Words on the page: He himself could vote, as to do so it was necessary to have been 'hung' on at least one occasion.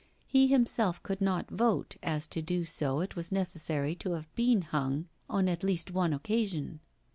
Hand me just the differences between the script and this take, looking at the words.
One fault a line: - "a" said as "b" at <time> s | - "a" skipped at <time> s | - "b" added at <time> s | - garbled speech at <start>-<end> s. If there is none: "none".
- "not" added at 1.2 s